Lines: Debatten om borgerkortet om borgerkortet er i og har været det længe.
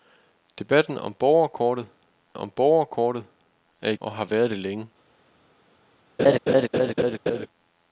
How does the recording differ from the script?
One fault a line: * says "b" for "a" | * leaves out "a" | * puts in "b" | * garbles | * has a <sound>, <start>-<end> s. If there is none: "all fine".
* has a laugh, 6.2-7.5 s